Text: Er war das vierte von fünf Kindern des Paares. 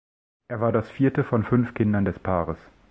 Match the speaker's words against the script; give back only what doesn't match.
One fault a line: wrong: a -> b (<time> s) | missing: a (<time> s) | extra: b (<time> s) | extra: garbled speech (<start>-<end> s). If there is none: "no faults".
no faults